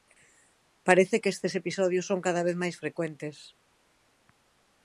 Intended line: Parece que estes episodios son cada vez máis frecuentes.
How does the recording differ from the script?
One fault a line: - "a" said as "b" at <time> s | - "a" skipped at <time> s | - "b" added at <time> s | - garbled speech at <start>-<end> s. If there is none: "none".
none